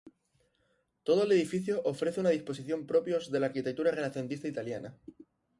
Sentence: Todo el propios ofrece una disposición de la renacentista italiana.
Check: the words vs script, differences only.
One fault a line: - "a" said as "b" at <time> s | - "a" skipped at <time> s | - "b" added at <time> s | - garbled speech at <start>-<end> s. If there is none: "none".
- "propios" said as "edificio" at 1.3 s
- "propios" added at 2.9 s
- "arquitectura" added at 3.5 s